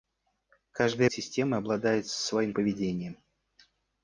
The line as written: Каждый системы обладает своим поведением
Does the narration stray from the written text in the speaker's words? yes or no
no